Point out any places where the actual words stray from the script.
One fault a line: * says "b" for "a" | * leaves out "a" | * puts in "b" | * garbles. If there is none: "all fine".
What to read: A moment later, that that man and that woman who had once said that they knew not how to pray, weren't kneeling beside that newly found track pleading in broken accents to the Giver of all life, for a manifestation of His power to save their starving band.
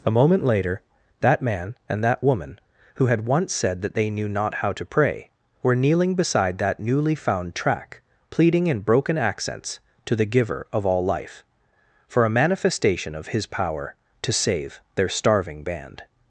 * leaves out "that"
* says "were" for "weren't"